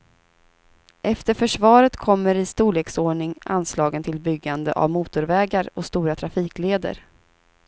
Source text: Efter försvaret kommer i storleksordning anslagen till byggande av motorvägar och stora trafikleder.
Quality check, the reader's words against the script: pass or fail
pass